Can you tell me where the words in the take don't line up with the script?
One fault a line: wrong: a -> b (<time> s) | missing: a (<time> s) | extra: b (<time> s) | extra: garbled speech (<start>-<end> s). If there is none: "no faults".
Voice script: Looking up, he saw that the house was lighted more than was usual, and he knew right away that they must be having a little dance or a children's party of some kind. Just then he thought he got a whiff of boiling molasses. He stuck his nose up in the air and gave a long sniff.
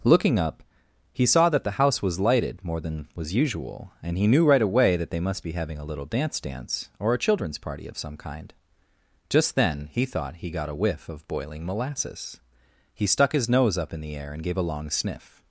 extra: dance (6.4 s)